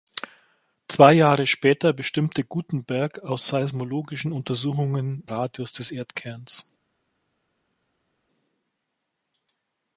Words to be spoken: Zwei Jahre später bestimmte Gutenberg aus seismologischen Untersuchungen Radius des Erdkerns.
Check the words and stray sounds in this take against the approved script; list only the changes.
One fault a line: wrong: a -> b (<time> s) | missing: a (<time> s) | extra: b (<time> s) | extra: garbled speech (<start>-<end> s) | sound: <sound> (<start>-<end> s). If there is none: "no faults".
no faults